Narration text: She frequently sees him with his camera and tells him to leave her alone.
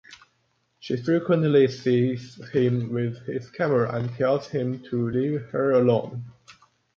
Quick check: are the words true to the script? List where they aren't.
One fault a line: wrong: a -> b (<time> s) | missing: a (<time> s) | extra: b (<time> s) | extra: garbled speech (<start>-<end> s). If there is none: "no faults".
no faults